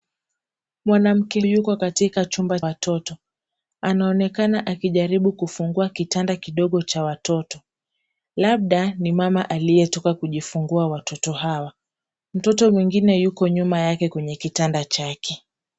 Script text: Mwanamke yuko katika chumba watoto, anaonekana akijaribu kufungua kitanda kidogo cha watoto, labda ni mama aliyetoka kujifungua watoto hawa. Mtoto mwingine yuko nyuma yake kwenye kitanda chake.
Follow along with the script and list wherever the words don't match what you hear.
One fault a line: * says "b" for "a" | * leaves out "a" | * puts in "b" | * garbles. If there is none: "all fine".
all fine